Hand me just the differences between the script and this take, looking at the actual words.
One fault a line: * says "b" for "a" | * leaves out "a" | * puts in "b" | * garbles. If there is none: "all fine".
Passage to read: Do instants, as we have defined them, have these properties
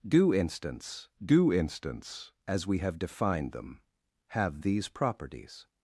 * puts in "do instants"